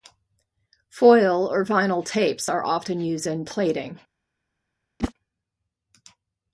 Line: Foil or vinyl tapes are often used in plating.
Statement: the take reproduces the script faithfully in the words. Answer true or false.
true